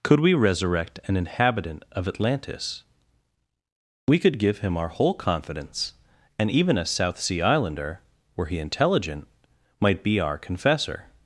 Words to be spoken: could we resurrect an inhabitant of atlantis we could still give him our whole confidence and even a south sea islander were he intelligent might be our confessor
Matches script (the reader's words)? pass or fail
fail